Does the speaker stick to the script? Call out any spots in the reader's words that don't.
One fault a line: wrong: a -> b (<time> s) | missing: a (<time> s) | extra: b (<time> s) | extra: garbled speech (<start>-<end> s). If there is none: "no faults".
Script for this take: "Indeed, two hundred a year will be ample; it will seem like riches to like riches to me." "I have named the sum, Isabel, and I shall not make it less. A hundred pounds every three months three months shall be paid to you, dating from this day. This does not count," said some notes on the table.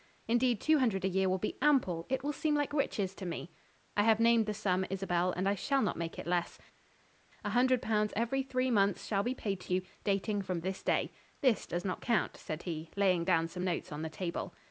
missing: like riches to (3.3 s)
missing: three months (9.1 s)
extra: he laying down (12.6 s)